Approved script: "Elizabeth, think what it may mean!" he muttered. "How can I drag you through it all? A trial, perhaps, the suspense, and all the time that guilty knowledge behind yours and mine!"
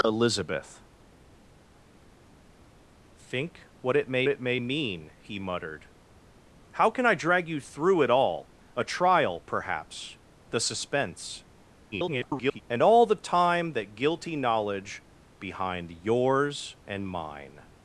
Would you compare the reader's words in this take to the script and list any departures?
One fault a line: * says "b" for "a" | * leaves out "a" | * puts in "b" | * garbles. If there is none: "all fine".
* puts in "it may"
* garbles